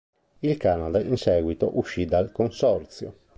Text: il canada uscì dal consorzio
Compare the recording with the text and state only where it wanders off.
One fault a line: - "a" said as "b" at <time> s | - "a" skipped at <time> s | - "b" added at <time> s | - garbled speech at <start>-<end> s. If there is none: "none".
- "in seguito" added at 1.0 s